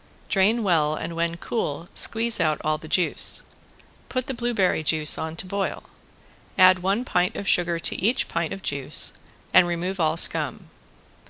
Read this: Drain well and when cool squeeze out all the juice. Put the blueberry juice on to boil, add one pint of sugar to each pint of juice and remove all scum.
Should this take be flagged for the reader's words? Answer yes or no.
no